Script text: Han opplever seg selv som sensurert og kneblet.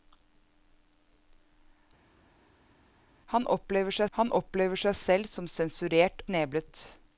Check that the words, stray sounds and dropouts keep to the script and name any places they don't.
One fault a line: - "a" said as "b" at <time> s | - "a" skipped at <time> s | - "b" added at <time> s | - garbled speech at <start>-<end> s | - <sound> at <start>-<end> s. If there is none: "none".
- "han opplever seg" added at 4.2 s
- "og" skipped at 6.2 s